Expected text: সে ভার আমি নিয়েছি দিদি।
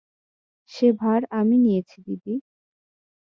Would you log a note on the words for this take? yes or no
no